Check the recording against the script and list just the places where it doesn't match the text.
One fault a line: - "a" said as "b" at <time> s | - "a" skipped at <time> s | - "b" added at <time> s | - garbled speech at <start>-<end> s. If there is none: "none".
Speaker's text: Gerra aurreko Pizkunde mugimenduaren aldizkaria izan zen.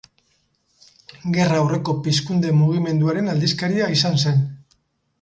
none